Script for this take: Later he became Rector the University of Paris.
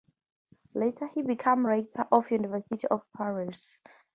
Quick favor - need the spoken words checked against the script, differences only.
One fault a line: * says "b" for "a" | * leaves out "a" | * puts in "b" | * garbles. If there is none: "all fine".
* puts in "of"